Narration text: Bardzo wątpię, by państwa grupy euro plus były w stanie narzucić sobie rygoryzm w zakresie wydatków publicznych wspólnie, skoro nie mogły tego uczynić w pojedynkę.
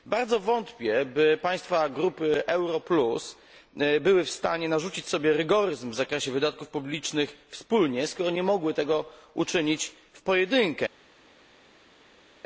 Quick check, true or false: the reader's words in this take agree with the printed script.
true